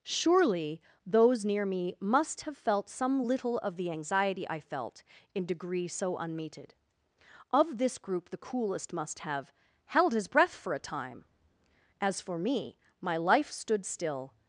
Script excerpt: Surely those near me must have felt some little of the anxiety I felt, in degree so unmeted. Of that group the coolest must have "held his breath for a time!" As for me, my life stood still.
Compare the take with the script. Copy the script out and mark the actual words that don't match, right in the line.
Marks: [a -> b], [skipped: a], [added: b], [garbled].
Surely those near me must have felt some little of the anxiety I felt, in degree so unmeted. Of [that -> this] group the coolest must have "held his breath for a time!" As for me, my life stood still.